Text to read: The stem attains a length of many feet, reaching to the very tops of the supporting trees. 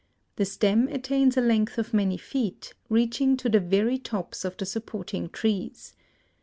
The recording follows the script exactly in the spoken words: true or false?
true